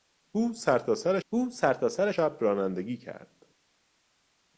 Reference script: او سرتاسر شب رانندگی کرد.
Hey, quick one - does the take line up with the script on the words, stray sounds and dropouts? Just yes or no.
no